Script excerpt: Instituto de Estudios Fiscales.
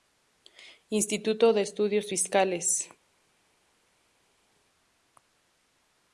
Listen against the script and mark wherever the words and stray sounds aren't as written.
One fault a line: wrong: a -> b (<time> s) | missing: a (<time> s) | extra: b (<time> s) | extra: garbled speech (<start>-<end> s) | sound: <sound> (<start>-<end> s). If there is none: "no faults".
no faults